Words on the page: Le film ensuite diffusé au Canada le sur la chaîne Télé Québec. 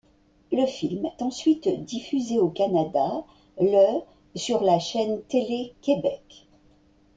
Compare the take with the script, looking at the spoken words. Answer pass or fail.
pass